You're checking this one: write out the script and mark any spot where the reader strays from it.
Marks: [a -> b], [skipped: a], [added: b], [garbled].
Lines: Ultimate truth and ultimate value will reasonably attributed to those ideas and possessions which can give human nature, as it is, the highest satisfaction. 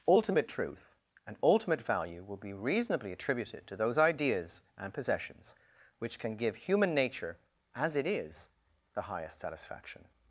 Ultimate truth and ultimate value will [added: be] reasonably attributed to those ideas and possessions which can give human nature, as it is, the highest satisfaction.